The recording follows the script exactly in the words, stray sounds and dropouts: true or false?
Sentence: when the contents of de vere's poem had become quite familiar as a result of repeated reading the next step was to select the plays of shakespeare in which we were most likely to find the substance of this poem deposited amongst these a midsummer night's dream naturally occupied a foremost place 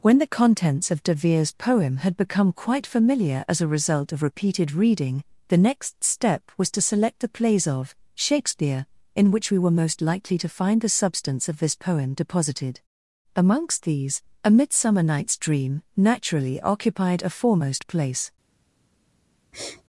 false